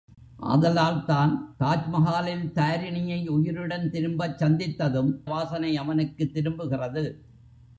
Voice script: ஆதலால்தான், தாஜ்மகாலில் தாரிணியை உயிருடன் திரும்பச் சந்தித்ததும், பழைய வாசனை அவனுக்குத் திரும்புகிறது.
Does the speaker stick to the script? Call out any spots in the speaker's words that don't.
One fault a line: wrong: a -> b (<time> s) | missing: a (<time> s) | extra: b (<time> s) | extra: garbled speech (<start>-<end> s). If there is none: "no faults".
missing: பழைய (5.1 s)